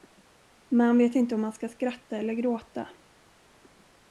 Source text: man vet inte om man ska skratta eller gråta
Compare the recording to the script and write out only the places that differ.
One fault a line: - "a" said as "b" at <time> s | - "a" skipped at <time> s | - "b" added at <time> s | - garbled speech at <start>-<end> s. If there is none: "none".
none